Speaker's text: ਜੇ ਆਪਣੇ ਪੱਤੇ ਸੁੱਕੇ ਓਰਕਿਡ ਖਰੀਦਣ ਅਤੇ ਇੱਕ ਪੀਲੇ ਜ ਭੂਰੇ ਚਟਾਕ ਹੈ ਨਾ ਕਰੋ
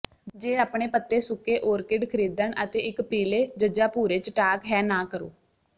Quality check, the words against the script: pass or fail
pass